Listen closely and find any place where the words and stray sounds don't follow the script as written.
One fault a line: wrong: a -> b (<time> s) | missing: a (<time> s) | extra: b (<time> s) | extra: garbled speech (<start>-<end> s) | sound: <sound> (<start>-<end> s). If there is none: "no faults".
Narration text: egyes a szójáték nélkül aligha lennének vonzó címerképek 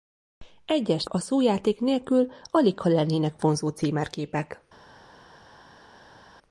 no faults